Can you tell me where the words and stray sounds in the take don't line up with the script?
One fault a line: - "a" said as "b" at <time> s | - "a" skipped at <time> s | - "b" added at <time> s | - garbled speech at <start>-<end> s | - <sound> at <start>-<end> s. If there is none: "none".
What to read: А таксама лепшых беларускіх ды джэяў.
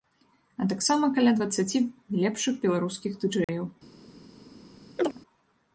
- "каля дваццаці" added at 1.2 s
- dropout at 3.4-3.5 s
- chirp at 5.0-5.2 s